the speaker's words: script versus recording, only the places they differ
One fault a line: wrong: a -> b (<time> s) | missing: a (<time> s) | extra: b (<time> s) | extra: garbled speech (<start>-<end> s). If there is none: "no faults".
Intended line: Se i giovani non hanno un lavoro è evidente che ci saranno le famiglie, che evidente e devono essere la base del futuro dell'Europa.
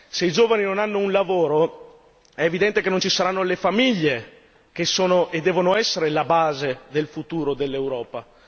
extra: non (2.9 s)
wrong: evidente -> sono (4.8 s)